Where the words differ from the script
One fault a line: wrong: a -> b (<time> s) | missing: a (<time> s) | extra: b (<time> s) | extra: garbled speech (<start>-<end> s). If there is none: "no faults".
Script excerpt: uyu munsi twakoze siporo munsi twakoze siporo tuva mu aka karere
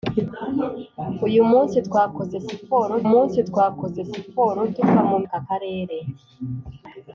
no faults